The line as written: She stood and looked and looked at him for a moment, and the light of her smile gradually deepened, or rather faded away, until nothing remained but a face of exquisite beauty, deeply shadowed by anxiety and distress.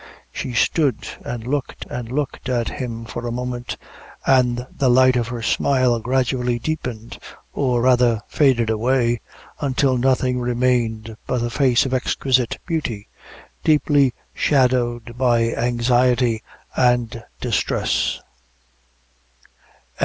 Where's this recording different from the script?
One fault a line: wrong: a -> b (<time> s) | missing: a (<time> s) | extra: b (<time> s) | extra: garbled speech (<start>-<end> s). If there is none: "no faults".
no faults